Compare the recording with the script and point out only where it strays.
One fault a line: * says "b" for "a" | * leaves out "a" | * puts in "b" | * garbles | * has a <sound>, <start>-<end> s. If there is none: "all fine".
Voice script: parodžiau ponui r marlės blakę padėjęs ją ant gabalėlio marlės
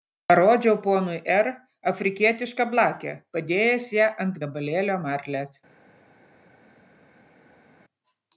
* says "afrikietišką" for "marlės"